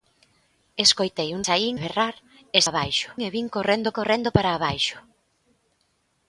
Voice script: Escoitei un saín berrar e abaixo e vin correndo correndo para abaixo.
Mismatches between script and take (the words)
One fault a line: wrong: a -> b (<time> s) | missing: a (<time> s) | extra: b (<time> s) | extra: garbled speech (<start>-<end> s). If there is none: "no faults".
no faults